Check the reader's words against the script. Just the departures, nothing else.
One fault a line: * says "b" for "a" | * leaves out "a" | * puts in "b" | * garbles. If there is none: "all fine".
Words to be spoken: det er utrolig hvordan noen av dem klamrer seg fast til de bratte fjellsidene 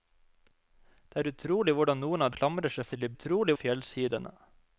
* leaves out "dem"
* leaves out "fast"
* says "utrolig" for "bratte"